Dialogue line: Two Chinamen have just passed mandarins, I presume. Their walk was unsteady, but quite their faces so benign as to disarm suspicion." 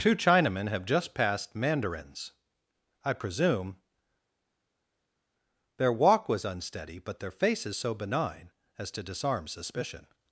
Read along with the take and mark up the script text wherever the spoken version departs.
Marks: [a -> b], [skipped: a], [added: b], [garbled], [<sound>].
Two Chinamen have just passed mandarins, I presume. Their walk was unsteady, but [skipped: quite] their faces so benign as to disarm suspicion."